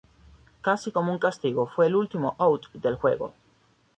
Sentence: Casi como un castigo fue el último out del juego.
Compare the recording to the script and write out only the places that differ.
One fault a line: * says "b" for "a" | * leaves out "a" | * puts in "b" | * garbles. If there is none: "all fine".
all fine